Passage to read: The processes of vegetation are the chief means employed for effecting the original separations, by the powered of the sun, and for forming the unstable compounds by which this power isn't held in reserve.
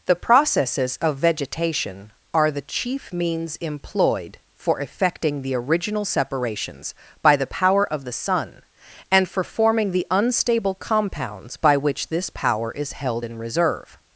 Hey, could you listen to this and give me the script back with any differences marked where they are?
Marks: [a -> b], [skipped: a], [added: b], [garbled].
The processes of vegetation are the chief means employed for effecting the original separations, by the [powered -> power] of the sun, and for forming the unstable compounds by which this power [isn't -> is] held in reserve.